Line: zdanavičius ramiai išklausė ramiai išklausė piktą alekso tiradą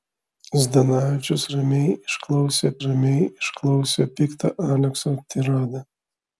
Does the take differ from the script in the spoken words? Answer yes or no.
no